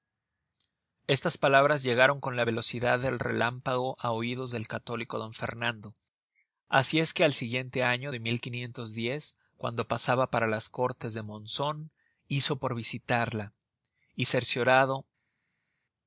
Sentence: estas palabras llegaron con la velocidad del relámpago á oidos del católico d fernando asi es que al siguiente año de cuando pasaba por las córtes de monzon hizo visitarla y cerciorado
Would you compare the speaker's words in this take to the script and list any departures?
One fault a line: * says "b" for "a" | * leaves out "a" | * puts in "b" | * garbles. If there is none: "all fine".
* says "para" for "por"
* puts in "por"